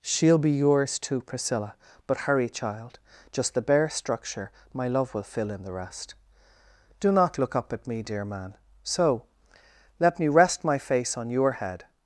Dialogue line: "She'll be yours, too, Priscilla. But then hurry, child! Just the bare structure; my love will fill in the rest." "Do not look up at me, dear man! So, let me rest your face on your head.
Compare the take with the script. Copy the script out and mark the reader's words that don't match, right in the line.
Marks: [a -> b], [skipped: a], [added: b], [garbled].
"She'll be yours, too, Priscilla. But [skipped: then] hurry, child! Just the bare structure; my love will fill in the rest." "Do not look up at me, dear man! So, let me rest [your -> my] face on your head.